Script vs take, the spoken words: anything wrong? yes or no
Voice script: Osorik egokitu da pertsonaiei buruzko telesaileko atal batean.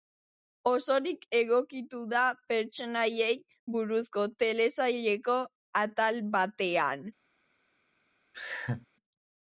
no